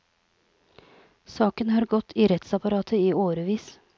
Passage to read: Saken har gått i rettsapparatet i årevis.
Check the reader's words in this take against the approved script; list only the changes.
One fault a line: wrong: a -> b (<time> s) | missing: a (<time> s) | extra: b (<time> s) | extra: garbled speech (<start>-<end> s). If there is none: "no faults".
no faults